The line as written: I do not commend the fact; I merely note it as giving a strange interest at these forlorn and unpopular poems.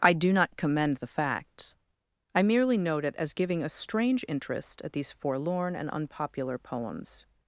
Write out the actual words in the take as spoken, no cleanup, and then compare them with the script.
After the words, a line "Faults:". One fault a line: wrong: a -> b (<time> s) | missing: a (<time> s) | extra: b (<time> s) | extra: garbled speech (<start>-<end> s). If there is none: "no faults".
I do not commend the fact; I merely note it as giving a strange interest at these forlorn and unpopular poems.
Faults:
no faults